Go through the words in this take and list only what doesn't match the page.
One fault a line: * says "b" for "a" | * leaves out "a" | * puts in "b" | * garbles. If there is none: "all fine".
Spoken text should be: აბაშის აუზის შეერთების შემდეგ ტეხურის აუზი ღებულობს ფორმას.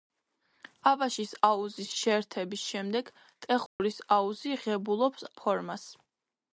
all fine